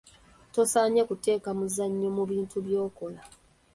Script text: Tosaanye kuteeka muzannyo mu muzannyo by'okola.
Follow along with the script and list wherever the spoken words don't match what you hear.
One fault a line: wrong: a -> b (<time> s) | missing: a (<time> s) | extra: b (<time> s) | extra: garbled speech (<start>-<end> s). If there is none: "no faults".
wrong: muzannyo -> bintu (2.3 s)